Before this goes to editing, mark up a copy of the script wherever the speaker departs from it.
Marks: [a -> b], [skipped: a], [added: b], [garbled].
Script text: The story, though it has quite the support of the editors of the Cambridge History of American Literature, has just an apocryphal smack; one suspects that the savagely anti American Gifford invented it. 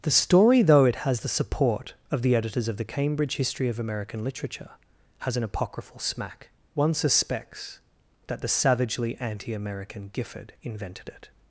The story, though it has [skipped: quite] the support of the editors of the Cambridge History of American Literature, has [skipped: just] an apocryphal smack; one suspects that the savagely anti American Gifford invented it.